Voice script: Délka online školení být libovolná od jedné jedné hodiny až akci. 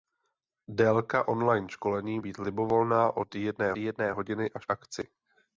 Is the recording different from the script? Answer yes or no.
no